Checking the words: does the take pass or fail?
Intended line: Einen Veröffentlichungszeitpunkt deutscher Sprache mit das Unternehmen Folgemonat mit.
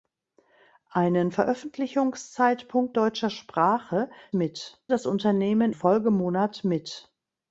pass